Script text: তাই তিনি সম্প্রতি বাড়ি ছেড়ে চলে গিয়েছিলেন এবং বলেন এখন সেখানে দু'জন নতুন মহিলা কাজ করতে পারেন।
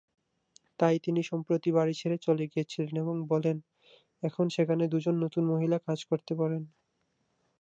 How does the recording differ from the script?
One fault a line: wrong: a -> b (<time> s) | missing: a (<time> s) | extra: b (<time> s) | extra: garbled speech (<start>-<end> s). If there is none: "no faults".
no faults